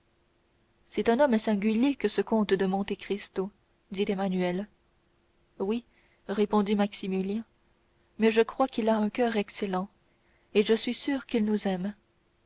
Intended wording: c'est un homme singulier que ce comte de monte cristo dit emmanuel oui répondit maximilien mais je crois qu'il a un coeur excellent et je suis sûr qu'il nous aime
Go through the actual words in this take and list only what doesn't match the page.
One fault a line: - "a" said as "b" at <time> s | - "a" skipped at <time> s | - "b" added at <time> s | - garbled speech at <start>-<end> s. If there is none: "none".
none